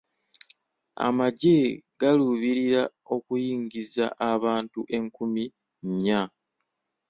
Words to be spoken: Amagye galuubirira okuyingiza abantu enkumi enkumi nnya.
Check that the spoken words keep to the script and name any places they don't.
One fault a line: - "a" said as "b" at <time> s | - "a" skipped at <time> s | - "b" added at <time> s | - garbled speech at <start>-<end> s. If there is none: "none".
- "enkumi" skipped at 5.4 s